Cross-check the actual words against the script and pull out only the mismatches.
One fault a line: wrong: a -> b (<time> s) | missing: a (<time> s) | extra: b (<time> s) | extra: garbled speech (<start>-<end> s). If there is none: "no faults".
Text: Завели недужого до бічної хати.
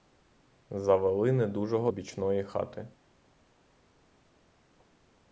missing: до (1.9 s)